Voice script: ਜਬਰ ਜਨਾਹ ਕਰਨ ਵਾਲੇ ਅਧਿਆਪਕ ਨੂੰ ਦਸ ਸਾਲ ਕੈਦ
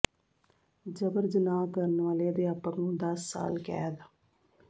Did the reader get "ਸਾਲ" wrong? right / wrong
right